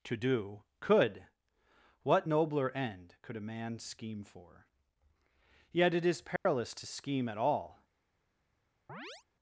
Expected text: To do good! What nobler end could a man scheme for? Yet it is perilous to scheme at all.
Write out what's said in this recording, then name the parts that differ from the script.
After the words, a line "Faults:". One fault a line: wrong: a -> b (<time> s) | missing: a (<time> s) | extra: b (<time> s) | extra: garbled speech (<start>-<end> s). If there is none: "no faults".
To do could! What nobler end could a man scheme for? Yet it is perilous to scheme at all.
Faults:
wrong: good -> could (0.8 s)